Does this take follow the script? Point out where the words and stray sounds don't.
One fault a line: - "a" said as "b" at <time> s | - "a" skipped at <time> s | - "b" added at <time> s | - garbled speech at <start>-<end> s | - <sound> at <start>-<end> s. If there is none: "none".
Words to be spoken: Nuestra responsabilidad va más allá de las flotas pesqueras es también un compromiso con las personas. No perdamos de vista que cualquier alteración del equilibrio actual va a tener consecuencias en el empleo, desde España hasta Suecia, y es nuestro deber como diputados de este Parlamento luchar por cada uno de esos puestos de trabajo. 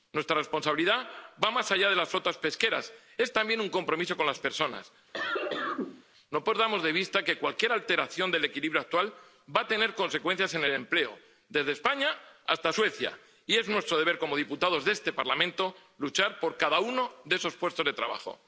- cough at 5.1-6.0 s